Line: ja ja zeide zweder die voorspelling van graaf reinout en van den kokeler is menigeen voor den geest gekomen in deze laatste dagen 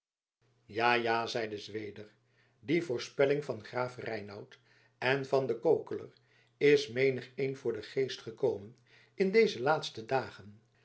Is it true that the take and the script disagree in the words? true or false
false